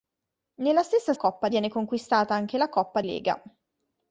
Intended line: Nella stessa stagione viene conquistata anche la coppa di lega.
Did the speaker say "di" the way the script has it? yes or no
no